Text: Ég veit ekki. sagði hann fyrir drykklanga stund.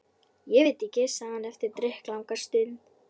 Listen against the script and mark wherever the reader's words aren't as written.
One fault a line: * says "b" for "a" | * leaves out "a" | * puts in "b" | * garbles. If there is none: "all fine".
* says "eftir" for "fyrir"